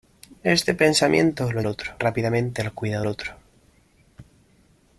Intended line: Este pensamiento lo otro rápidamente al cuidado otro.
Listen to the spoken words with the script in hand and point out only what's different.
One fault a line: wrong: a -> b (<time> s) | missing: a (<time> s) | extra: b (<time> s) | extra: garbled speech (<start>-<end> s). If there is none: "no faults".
no faults